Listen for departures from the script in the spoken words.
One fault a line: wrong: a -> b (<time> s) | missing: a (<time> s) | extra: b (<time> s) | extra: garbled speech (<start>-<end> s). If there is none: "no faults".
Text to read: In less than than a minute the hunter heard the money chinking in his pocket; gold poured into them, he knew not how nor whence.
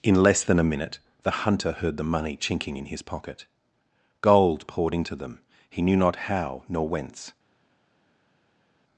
missing: than (0.6 s)